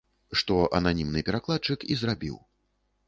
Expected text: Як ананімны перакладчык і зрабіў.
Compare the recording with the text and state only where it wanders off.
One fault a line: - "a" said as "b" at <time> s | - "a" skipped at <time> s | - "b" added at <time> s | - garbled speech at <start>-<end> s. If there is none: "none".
- "Як" said as "Што" at 0.4 s